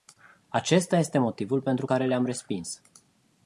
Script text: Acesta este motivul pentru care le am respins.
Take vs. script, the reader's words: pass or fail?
pass